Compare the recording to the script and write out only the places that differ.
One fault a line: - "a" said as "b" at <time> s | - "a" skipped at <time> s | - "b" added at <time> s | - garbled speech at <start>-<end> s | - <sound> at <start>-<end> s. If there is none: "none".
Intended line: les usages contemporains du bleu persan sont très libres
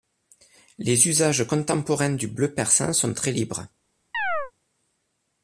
- chirp at 4.1-4.5 s